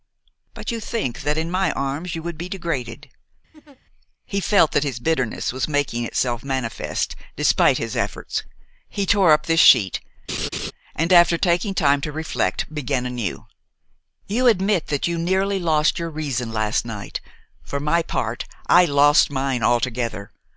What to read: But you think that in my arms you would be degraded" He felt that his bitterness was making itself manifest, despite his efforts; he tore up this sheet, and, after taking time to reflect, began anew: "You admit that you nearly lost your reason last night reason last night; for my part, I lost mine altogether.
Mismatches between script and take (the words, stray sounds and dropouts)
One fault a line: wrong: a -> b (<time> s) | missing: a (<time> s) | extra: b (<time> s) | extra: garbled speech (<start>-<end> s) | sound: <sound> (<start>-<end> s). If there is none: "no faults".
sound: laugh (3.5-3.8 s)
sound: laugh (10.3-10.7 s)
missing: reason last night (17.2 s)